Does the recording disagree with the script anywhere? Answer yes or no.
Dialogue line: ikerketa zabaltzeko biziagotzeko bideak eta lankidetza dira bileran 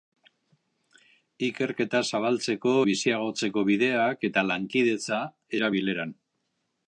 no